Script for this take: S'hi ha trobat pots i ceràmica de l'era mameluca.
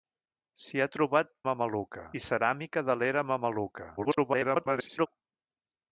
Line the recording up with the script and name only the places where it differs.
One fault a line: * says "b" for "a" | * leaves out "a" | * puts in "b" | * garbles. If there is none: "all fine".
* says "mameluca" for "pots"
* garbles